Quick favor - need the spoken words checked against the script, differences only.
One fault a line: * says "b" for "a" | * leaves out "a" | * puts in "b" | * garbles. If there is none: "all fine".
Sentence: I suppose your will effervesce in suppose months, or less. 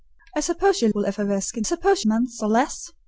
all fine